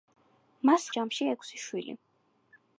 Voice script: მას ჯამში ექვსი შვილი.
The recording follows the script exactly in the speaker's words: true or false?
true